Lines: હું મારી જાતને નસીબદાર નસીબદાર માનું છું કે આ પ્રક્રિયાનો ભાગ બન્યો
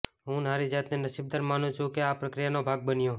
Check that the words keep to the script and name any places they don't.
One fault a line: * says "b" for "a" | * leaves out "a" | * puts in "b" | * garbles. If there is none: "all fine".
* leaves out "નસીબદાર"